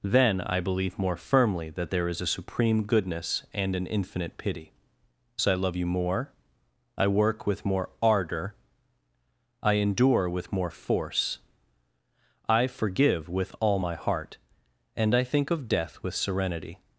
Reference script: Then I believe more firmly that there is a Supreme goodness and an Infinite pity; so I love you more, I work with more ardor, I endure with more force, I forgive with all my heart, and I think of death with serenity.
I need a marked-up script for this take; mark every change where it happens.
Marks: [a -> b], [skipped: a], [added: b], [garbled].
Then I believe more firmly that there is a Supreme goodness and an Infinite pity; so I love you more, I work with more ardor, I endure with more force, I forgive with all my heart, and I think of death with serenity.